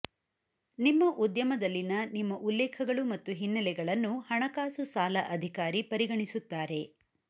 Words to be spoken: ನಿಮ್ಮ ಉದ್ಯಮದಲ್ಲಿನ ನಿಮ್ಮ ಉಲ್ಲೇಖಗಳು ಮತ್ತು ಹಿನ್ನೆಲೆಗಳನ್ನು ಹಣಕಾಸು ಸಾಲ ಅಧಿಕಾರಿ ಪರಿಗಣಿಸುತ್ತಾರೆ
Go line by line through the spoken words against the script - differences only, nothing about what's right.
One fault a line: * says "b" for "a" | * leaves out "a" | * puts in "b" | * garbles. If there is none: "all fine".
all fine